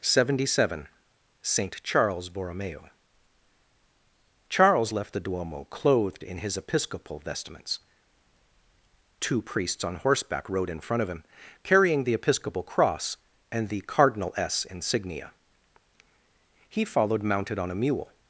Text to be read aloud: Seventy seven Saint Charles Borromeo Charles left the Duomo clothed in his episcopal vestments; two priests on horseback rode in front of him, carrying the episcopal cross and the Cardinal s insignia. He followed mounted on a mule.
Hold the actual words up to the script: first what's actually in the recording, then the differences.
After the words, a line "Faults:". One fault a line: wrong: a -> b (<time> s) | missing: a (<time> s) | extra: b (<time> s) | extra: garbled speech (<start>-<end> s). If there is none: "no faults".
Seventy seven Saint Charles Borromeo Charles left the Duomo clothed in his episcopal vestments; two priests on horseback rode in front of him, carrying the episcopal cross and the Cardinal s insignia. He followed mounted on a mule.
Faults:
no faults